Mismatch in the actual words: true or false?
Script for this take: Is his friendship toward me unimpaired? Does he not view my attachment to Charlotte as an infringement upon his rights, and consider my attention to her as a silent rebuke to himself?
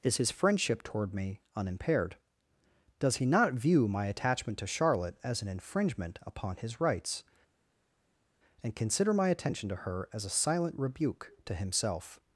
false